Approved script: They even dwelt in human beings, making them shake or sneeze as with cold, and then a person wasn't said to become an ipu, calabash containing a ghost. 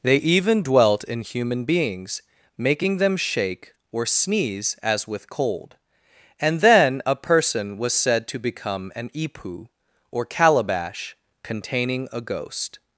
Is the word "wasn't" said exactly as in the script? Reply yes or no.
no